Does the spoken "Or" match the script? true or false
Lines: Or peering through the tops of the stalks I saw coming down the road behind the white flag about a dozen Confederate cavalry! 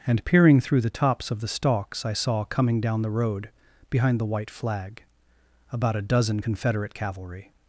false